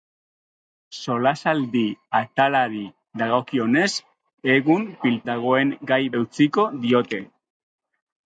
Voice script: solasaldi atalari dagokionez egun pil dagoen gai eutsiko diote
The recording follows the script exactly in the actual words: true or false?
true